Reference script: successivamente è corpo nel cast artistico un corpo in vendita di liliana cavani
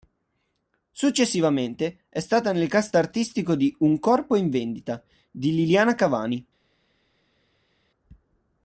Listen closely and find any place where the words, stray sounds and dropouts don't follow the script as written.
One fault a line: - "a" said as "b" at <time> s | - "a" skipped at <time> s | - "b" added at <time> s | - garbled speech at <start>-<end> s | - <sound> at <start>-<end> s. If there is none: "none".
- "corpo" said as "stata" at 2.2 s
- "di" added at 3.5 s